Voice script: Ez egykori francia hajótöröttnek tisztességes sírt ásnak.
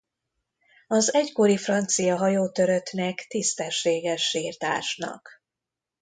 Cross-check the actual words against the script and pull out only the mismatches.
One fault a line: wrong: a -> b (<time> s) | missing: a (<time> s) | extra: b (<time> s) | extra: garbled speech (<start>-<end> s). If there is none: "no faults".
wrong: Ez -> Az (0.9 s)